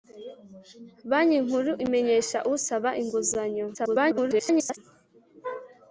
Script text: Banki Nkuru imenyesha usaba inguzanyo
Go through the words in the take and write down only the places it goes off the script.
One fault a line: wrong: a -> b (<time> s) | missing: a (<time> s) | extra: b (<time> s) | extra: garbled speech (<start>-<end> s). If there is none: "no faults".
extra: garbled speech (3.7-4.8 s)